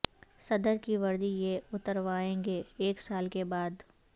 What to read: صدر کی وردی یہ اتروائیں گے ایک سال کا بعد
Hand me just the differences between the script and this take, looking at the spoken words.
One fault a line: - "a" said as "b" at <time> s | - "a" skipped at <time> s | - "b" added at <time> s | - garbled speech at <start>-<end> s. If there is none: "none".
- "کا" said as "کے" at 3.3 s